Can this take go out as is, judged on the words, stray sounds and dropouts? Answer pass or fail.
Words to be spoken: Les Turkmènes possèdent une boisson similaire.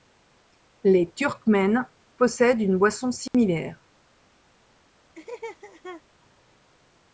fail